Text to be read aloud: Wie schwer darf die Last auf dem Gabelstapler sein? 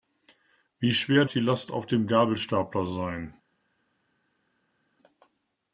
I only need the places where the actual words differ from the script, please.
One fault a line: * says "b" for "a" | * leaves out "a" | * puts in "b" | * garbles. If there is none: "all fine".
* leaves out "darf"